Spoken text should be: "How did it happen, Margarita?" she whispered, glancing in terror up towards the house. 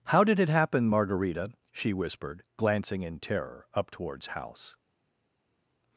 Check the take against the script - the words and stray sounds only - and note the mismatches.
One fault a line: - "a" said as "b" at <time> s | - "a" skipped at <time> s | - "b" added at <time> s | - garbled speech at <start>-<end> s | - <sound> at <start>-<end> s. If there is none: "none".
- "the" skipped at 4.3 s